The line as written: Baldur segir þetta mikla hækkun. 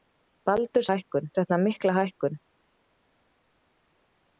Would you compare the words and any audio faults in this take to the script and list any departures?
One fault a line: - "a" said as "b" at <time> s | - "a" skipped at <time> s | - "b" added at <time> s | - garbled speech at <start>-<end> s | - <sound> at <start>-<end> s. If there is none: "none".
- "segir" said as "hækkun" at 0.9 s